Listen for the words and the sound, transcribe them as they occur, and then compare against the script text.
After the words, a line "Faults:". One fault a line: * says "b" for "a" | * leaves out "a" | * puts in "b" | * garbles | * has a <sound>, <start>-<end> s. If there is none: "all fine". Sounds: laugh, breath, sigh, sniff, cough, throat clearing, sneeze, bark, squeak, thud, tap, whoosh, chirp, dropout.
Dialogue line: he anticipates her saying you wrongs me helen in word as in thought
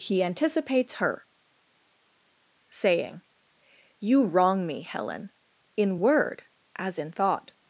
he anticipates her saying you wrong me helen in word as in thought
Faults:
* says "wrong" for "wrongs"